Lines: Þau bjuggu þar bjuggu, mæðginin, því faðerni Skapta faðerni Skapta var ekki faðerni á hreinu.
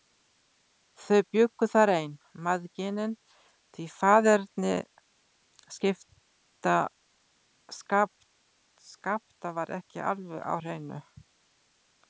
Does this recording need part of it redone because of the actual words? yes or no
yes